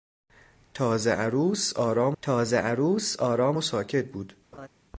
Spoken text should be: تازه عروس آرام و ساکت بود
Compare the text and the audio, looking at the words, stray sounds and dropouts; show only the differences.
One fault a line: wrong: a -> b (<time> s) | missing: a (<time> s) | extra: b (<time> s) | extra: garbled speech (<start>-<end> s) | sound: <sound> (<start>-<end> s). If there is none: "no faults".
extra: تازه عروس آرام (2.2 s)
sound: laugh (4.5-4.7 s)